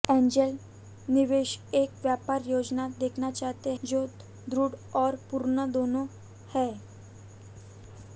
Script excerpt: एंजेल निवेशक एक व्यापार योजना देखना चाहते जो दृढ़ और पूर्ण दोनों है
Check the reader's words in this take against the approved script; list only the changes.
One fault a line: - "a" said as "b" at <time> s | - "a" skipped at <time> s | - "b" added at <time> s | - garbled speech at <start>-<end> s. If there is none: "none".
none